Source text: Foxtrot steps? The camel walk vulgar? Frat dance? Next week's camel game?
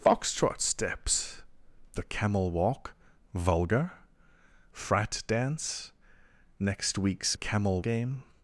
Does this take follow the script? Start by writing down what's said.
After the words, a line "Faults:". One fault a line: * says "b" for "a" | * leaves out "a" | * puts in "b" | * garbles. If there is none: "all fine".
Foxtrot steps? The camel walk vulgar? Frat dance? Next week's camel game?
Faults:
all fine